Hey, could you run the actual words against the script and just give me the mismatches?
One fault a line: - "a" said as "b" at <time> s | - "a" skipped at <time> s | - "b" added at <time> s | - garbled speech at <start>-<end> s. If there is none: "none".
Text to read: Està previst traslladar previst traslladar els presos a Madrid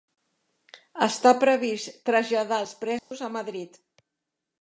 - "previst traslladar" skipped at 2.6 s